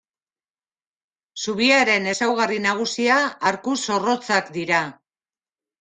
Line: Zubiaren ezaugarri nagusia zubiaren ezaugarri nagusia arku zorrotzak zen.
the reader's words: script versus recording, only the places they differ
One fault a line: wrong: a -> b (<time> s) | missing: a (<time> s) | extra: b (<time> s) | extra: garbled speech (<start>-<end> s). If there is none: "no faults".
missing: zubiaren ezaugarri nagusia (3.2 s)
wrong: zen -> dira (4.6 s)